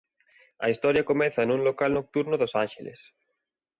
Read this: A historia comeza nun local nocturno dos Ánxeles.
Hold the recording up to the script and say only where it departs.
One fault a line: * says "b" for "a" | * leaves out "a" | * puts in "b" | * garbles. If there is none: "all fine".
all fine